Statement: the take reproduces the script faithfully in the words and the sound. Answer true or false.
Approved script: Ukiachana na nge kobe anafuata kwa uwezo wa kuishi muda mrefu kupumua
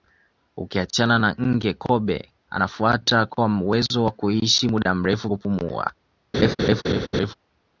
false